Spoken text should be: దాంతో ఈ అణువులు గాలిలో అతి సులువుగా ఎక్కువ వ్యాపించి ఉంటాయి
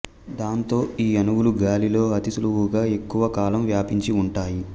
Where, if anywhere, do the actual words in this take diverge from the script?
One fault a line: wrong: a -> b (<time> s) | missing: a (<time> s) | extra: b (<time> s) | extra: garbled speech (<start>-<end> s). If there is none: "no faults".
extra: కాలం (3.4 s)